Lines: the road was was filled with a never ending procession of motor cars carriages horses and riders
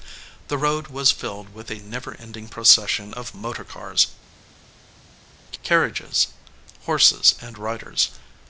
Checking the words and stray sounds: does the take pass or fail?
fail